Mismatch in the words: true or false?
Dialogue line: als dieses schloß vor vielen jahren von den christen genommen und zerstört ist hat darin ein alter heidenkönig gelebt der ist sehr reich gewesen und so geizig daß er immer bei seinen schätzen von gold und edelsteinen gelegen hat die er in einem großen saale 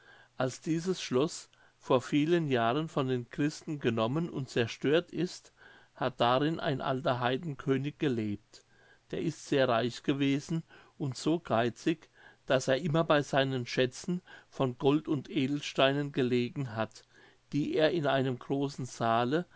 false